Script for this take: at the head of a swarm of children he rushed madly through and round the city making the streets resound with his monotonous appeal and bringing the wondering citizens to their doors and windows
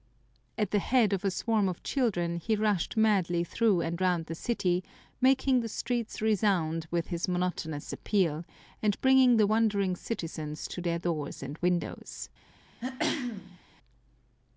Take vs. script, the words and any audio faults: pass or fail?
fail